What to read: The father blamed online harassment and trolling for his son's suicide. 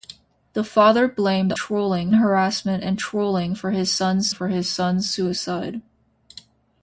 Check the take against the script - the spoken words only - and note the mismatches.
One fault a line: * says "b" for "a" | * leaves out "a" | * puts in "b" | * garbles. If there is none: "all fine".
* says "trolling" for "online"
* puts in "for his son's"